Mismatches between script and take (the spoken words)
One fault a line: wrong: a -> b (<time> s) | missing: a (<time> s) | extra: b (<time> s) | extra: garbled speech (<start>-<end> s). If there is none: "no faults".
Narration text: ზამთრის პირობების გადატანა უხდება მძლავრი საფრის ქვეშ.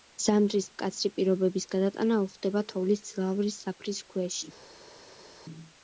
extra: მკაცრი (0.7 s)
extra: თოვლის (2.7 s)